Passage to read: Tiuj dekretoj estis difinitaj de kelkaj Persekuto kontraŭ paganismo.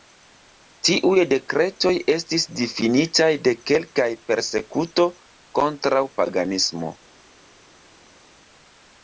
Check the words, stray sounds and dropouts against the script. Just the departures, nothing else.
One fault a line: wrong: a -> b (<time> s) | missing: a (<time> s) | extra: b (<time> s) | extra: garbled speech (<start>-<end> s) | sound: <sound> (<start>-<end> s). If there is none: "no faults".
no faults